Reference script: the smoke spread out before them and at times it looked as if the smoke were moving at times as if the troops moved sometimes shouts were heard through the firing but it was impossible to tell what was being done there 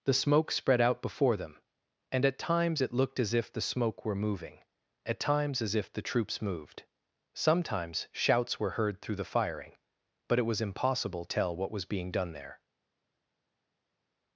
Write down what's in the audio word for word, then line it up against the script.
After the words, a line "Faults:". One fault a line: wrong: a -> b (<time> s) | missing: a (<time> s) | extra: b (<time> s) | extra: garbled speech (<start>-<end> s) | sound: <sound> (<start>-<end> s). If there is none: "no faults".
the smoke spread out before them and at times it looked as if the smoke were moving at times as if the troops moved sometimes shouts were heard through the firing but it was impossible tell what was being done there
Faults:
missing: to (11.3 s)